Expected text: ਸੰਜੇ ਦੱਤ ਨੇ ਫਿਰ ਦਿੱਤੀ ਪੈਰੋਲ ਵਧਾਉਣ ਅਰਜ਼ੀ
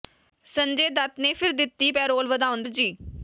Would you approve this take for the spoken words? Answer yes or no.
yes